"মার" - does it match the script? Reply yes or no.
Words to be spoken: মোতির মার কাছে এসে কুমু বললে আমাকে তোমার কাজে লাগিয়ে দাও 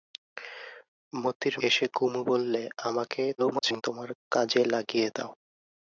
no